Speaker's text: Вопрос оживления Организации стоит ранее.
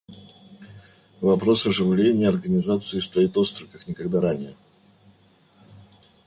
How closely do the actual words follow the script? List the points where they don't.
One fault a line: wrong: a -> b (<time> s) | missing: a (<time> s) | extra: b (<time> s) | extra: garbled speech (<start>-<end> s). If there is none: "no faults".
extra: остро как никогда (3.3 s)